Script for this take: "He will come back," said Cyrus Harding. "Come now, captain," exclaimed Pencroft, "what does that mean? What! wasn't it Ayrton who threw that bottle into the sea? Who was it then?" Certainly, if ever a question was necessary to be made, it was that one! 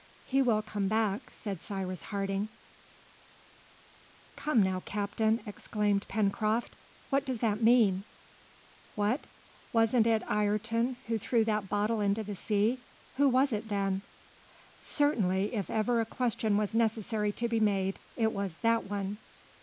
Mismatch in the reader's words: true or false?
false